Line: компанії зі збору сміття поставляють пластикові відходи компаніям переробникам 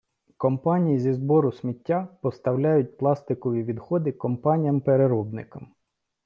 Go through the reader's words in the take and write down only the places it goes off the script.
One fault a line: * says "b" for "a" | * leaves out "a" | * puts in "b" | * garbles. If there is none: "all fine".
all fine